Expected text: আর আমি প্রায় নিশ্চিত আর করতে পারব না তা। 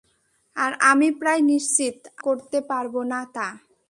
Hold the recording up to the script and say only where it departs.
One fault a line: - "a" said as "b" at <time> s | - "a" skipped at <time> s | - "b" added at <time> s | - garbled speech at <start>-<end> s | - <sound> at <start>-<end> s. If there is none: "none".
- "আর" skipped at 2.0 s